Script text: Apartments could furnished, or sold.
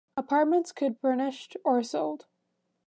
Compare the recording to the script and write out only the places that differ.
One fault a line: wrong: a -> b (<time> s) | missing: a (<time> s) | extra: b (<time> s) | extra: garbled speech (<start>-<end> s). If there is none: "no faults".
no faults